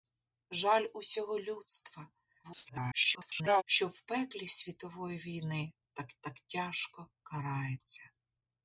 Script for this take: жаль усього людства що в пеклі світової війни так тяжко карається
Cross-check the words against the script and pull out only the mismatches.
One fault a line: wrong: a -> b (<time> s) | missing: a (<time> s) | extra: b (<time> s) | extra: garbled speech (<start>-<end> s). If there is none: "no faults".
extra: garbled speech (2.4-3.6 s)
extra: так (6.2 s)